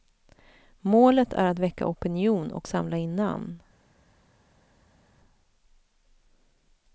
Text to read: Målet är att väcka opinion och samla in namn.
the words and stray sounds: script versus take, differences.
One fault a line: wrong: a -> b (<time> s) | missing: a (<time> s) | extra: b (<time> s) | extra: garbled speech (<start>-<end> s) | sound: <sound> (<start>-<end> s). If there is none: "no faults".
no faults